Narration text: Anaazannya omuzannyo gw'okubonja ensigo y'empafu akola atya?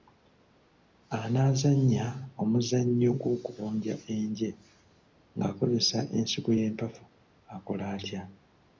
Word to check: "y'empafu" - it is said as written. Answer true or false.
true